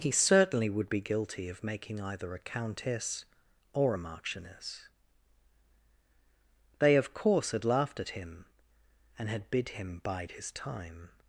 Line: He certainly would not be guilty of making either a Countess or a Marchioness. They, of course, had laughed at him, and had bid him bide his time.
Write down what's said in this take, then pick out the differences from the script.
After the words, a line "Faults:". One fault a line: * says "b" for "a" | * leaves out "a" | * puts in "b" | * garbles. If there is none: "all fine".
He certainly would be guilty of making either a Countess or a Marchioness. They, of course, had laughed at him, and had bid him bide his time.
Faults:
* leaves out "not"